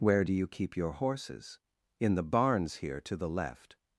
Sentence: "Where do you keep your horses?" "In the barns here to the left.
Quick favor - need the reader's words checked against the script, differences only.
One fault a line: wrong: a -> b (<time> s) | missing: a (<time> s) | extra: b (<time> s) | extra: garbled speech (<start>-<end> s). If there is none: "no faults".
no faults